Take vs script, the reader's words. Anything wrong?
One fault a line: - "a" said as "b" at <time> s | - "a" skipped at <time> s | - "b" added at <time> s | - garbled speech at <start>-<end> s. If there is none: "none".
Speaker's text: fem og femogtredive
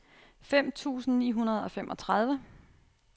- "tusind ni hundrede" added at 0.7 s